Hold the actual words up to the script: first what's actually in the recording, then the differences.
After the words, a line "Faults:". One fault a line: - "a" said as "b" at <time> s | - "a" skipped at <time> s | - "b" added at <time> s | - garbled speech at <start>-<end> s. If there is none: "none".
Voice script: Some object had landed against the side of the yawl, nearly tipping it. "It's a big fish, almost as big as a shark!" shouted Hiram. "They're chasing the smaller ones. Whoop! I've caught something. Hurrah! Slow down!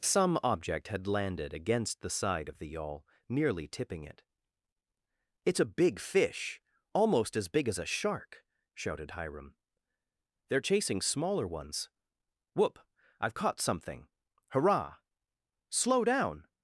Some object had landed against the side of the yawl, nearly tipping it. "It's a big fish, almost as big as a shark!" shouted Hiram. "They're chasing smaller ones. Whoop! I've caught something. Hurrah! Slow down!
Faults:
- "the" skipped at 11.0 s